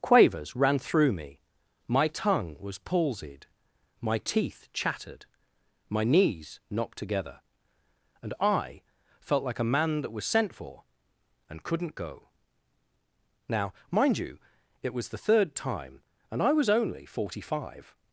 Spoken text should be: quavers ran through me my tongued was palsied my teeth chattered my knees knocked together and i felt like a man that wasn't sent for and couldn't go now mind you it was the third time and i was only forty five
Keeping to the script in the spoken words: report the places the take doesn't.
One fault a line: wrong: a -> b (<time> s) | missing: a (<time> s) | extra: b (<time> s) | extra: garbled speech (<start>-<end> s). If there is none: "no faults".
wrong: tongued -> tongue (2.1 s)
wrong: wasn't -> was (10.1 s)